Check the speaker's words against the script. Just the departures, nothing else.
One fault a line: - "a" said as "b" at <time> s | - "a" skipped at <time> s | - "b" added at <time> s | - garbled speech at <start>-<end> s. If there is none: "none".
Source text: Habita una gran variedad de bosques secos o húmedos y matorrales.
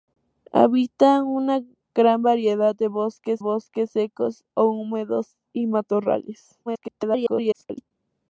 - "bosques" added at 3.4 s
- garbled speech at 6.7-7.9 s